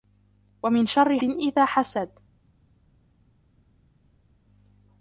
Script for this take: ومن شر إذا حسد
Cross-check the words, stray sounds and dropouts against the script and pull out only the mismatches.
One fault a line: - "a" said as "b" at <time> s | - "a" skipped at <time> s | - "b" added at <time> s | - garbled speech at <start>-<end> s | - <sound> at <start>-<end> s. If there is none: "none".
none